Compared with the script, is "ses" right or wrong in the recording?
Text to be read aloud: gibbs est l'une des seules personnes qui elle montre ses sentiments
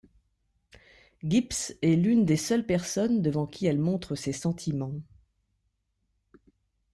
right